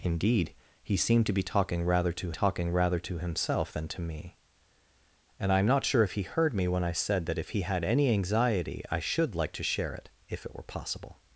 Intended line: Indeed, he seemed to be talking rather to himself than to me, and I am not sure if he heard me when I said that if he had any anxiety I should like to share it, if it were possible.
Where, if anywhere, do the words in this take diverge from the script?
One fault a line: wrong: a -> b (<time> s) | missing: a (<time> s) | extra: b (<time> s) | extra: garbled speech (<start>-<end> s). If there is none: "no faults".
extra: talking rather to (2.3 s)